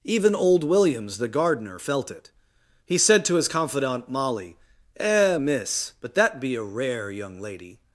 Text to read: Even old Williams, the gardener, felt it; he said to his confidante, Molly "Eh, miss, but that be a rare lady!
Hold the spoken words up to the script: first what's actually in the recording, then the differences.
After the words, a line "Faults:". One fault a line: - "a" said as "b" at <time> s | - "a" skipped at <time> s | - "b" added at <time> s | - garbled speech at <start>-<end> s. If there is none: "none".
Even old Williams, the gardener, felt it; he said to his confidante, Molly "Eh, miss, but that be a rare young lady!
Faults:
- "young" added at 7.1 s